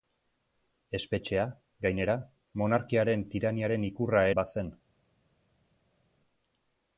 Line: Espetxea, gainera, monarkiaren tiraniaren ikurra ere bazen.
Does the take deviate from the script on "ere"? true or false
true